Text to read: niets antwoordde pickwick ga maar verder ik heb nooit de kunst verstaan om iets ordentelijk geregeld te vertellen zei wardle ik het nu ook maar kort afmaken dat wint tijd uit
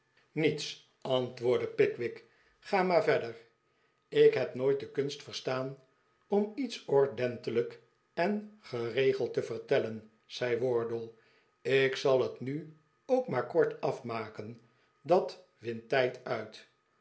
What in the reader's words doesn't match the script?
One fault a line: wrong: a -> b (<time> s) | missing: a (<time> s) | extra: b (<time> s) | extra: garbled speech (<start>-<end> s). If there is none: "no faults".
extra: en (8.1 s)
extra: zal (12.0 s)